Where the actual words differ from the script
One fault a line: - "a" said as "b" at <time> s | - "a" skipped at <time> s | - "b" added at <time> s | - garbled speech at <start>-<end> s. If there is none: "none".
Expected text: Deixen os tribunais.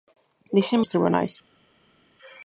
none